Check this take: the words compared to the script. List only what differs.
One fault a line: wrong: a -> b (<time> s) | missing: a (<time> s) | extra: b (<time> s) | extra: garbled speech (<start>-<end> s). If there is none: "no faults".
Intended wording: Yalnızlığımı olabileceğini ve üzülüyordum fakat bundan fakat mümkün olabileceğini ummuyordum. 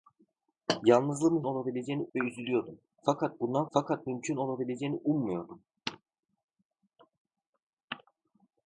no faults